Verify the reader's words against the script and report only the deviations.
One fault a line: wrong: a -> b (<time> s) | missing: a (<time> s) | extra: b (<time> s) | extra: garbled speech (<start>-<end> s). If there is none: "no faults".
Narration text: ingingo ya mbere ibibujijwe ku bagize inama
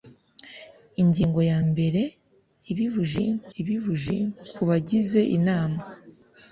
extra: ibibujijwe (3.6 s)